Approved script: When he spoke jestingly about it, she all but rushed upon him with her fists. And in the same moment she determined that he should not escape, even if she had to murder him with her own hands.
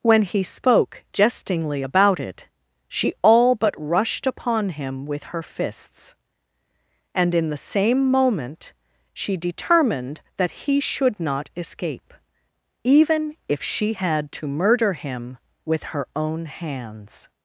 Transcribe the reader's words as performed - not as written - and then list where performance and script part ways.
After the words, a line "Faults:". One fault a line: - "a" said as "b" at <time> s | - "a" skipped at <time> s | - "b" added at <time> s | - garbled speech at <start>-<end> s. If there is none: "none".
When he spoke jestingly about it, she all but rushed upon him with her fists. And in the same moment she determined that he should not escape, even if she had to murder him with her own hands.
Faults:
none